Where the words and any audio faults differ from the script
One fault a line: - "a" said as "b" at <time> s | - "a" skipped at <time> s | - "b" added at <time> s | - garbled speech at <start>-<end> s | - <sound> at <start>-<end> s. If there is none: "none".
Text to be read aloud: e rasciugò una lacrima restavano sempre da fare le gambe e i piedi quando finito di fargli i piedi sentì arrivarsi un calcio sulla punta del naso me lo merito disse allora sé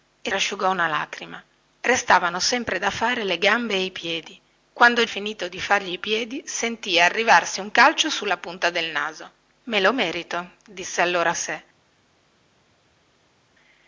none